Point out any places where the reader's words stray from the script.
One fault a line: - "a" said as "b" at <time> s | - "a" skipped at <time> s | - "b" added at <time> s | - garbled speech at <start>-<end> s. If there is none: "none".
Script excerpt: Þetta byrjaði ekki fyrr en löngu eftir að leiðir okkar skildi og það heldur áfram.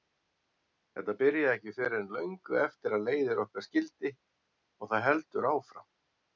none